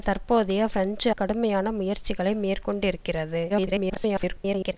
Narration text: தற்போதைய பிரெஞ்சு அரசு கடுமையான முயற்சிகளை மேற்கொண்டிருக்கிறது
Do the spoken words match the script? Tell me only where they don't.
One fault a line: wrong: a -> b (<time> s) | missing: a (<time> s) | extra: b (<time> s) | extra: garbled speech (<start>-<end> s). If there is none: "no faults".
missing: அரசு (1.1 s)
extra: garbled speech (3.5-4.7 s)